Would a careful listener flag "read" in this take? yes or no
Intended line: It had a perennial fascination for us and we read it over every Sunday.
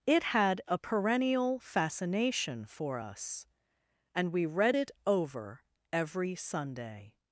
no